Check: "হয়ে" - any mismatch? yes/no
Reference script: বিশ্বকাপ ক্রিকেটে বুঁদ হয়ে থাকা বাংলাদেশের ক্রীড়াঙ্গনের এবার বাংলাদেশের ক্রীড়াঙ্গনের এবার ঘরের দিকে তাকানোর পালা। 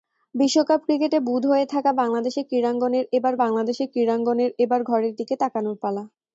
no